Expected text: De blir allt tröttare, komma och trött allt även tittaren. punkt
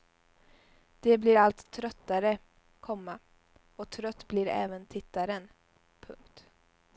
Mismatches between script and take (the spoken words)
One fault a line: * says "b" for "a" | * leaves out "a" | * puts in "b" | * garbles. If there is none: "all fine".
* says "blir" for "allt"